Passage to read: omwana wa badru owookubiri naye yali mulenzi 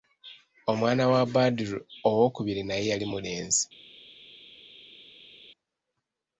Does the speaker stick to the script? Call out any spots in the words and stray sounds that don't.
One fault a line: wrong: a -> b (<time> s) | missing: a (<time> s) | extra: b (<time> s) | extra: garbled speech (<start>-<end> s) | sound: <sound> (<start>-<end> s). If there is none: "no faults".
no faults